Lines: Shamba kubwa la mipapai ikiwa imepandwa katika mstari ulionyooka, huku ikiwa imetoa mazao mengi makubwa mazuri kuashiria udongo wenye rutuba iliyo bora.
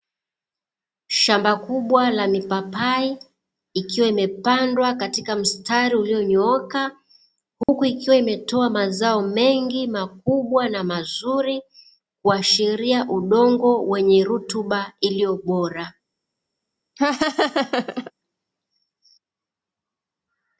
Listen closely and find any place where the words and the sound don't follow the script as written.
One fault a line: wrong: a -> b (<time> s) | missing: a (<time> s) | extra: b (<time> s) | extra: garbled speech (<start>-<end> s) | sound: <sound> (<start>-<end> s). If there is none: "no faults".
sound: dropout (7.6-7.7 s)
extra: na (10.7 s)
sound: laugh (17.0-18.1 s)